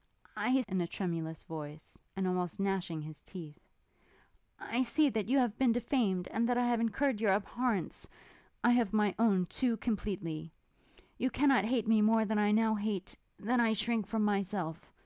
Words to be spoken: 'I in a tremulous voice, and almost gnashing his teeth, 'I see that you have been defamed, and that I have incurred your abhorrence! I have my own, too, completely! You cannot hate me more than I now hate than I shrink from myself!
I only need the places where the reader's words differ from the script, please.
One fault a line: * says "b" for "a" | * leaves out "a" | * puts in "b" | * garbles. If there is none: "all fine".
all fine